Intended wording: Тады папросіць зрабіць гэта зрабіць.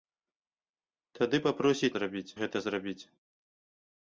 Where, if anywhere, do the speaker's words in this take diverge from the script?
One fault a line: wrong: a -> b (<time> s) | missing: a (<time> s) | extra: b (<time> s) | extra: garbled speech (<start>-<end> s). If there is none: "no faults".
no faults